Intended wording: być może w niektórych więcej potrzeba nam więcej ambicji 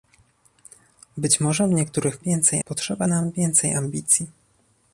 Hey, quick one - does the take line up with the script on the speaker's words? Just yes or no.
yes